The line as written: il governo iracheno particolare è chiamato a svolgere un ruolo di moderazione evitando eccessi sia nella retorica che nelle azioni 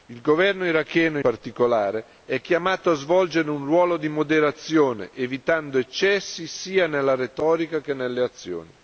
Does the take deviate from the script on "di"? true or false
false